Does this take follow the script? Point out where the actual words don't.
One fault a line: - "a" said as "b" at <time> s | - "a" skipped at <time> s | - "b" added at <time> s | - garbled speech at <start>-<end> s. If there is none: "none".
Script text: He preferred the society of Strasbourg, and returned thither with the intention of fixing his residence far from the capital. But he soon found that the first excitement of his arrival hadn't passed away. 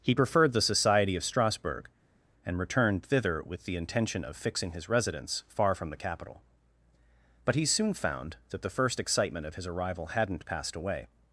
none